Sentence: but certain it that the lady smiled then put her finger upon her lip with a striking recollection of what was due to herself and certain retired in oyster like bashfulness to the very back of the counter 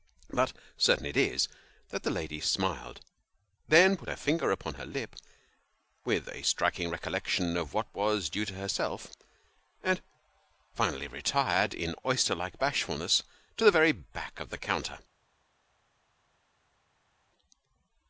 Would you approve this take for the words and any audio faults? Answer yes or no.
no